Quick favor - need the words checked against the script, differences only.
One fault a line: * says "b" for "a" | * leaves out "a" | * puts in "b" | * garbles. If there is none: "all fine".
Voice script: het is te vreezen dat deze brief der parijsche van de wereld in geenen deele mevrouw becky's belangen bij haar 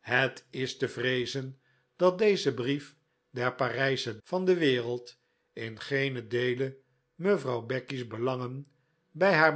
all fine